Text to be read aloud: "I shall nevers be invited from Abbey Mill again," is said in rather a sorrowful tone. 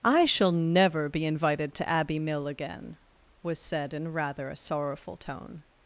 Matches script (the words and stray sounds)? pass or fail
fail